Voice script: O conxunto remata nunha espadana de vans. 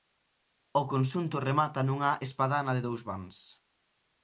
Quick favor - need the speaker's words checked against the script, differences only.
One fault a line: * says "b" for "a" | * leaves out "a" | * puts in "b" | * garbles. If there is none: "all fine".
* puts in "dous"